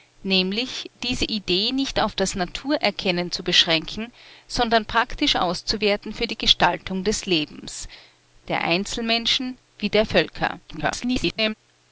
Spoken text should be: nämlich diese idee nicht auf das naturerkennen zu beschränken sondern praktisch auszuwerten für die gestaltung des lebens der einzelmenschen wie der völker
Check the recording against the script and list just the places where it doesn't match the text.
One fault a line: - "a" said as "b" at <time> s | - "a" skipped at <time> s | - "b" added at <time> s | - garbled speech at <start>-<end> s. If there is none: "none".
- garbled speech at 10.7-11.5 s